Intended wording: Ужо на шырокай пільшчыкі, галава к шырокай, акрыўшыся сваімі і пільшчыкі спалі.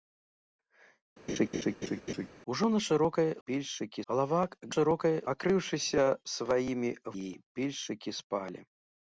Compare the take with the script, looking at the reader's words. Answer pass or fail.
pass